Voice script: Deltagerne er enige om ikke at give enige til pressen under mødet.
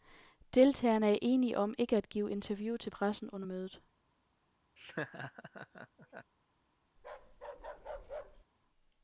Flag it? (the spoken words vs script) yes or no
yes